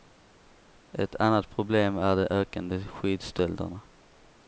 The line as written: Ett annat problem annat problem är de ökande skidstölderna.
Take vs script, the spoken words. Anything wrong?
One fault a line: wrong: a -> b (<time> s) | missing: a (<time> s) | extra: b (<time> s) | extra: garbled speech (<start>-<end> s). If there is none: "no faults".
missing: annat problem (2.0 s)